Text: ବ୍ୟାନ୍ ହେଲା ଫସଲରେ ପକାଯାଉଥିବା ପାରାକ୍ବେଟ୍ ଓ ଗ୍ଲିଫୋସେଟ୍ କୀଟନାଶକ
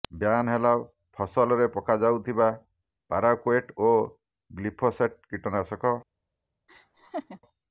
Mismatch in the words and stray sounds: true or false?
true